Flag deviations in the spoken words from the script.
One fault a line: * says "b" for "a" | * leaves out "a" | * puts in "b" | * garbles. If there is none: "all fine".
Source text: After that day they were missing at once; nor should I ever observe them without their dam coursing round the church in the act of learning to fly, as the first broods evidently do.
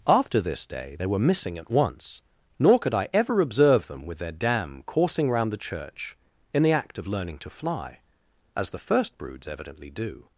* says "this" for "that"
* says "could" for "should"
* says "with" for "without"